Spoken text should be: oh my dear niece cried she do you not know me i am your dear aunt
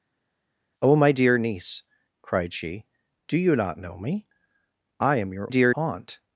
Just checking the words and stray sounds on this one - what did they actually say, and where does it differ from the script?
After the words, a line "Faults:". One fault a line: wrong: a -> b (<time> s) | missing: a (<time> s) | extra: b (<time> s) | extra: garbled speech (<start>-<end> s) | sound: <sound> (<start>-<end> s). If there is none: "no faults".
oh my dear niece cried she do you not know me i am your dear aunt
Faults:
no faults